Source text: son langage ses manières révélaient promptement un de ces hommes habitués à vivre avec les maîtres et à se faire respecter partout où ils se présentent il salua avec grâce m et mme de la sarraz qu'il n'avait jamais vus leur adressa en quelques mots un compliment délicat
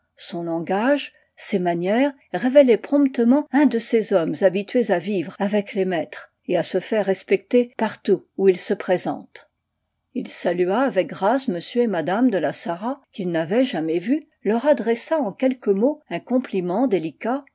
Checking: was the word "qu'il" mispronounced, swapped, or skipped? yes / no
no